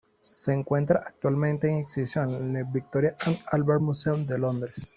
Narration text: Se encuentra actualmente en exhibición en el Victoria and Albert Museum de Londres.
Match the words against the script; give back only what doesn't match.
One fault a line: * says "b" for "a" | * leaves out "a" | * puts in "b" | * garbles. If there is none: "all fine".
all fine